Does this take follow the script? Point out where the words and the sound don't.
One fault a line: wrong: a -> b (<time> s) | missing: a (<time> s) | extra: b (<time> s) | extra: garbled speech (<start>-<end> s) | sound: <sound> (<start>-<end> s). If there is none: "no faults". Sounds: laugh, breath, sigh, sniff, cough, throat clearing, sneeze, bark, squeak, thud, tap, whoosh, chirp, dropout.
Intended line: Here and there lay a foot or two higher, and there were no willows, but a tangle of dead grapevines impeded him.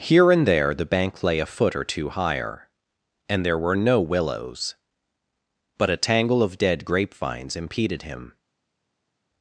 extra: the bank (0.7 s)